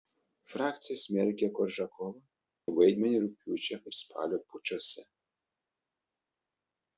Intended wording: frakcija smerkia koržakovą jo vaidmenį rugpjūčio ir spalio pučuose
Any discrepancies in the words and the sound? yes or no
no